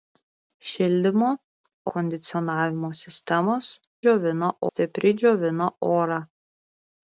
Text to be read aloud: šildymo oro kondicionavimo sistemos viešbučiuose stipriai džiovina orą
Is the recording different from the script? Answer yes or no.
yes